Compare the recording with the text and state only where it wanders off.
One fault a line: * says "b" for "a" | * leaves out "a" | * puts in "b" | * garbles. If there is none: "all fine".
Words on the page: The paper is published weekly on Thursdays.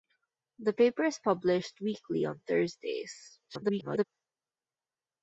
* garbles